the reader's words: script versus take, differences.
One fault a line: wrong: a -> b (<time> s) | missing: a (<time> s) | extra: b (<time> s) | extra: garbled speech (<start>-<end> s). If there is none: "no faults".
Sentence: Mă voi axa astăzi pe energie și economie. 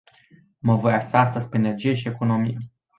no faults